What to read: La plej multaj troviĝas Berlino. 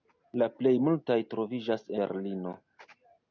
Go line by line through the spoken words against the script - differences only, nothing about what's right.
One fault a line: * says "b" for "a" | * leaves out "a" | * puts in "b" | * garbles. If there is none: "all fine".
all fine